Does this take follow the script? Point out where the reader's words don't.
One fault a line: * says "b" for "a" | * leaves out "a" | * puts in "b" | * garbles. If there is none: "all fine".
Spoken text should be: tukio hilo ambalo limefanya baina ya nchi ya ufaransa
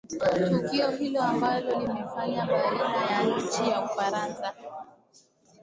all fine